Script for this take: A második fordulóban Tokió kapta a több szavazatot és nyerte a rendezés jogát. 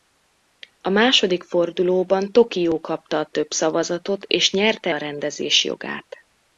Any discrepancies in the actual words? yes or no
no